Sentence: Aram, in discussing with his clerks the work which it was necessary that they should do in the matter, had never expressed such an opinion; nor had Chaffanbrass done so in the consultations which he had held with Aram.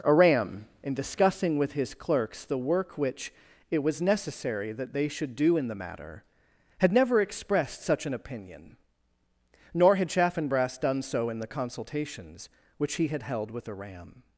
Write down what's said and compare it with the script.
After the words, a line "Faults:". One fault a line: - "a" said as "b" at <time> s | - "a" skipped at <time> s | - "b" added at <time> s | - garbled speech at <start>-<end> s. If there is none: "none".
Aram, in discussing with his clerks the work which it was necessary that they should do in the matter, had never expressed such an opinion; nor had Chaffanbrass done so in the consultations which he had held with Aram.
Faults:
none